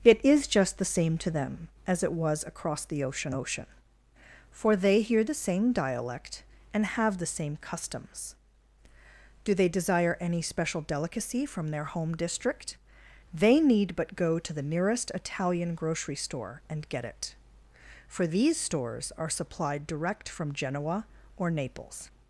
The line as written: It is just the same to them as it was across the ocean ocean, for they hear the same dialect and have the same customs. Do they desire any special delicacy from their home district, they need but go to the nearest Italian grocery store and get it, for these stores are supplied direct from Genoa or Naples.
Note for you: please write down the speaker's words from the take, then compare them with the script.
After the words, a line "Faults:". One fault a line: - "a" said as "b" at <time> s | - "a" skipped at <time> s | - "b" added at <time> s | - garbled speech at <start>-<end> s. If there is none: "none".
It is just the same to them as it was across the ocean ocean, for they hear the same dialect and have the same customs. Do they desire any special delicacy from their home district, they need but go to the nearest Italian grocery store and get it, for these stores are supplied direct from Genoa or Naples.
Faults:
none